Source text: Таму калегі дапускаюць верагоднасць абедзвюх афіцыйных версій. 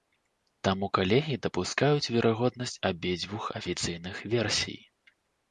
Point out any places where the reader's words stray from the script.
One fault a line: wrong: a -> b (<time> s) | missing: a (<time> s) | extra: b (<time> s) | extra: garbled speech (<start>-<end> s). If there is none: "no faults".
no faults